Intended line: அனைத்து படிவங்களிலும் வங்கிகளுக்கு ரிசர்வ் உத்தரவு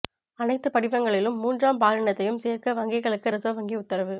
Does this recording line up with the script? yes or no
no